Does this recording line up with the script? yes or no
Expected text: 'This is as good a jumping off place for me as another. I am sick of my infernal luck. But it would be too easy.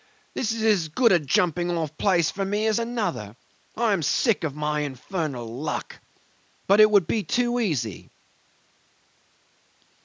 yes